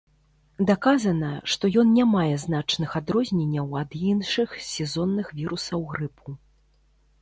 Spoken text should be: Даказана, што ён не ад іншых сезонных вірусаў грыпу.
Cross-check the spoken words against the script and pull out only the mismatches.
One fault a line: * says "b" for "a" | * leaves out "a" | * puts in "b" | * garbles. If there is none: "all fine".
* puts in "мае значных адрозненняў"